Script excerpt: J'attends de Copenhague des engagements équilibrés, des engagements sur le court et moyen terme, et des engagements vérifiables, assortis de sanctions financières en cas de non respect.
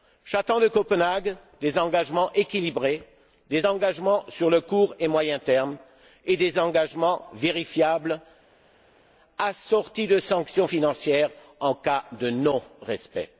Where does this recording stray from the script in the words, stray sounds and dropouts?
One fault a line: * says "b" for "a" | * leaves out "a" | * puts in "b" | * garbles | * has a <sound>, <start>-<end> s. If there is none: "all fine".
all fine